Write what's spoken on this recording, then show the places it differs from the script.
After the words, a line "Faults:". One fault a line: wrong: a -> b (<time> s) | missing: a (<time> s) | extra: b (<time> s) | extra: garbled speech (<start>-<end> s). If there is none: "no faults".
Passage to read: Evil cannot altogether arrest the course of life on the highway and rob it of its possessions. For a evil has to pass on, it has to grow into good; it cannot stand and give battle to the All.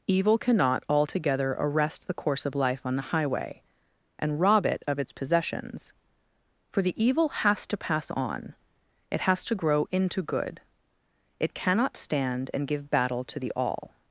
Evil cannot altogether arrest the course of life on the highway and rob it of its possessions. For the evil has to pass on, it has to grow into good; it cannot stand and give battle to the All.
Faults:
wrong: a -> the (6.8 s)